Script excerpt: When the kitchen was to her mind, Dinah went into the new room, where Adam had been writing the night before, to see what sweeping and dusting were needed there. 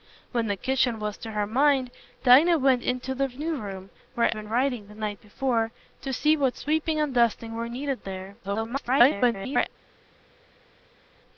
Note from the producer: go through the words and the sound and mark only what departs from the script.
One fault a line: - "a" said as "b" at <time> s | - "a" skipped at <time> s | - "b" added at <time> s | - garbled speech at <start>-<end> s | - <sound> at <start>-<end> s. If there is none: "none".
- "Adam had" skipped at 4.3 s
- garbled speech at 8.4-9.7 s